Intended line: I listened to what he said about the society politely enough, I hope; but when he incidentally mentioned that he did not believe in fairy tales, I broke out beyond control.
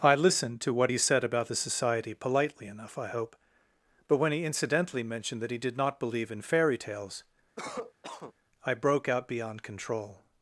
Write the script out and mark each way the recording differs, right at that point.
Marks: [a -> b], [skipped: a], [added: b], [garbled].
I listened to what he said about the society politely enough, I hope; but when he incidentally mentioned that he did not believe in fairy tales, I broke out beyond control.